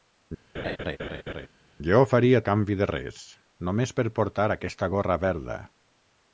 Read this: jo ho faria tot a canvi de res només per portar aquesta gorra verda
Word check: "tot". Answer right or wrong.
wrong